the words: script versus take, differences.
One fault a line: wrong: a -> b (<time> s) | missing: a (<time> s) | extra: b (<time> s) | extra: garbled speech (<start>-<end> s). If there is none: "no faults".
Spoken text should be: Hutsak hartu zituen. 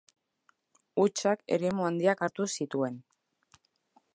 extra: eremu handiak (1.6 s)